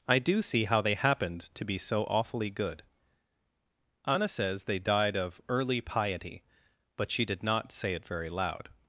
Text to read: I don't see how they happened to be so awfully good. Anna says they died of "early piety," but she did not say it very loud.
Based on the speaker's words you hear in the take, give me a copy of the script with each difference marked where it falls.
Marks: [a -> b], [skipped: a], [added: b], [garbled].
I [don't -> do] see how they happened to be so awfully good. Anna says they died of "early piety," but she did not say it very loud.